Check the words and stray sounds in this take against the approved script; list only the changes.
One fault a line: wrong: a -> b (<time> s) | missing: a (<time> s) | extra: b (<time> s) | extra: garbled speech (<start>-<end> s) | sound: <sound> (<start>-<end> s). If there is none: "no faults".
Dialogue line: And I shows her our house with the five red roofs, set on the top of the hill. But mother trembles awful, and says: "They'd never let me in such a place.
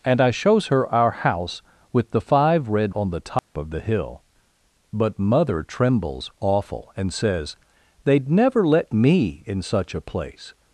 missing: roofs set (3.0 s)
sound: dropout (3.4-3.5 s)